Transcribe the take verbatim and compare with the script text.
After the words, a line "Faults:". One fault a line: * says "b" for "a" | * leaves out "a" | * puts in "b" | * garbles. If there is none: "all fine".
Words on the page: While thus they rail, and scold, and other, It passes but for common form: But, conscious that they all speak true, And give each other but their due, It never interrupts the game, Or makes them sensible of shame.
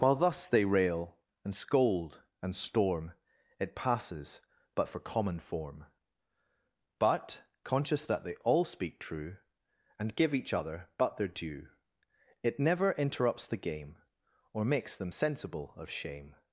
While thus they rail, and scold, and storm, It passes but for common form: But, conscious that they all speak true, And give each other but their due, It never interrupts the game, Or makes them sensible of shame.
Faults:
* says "storm" for "other"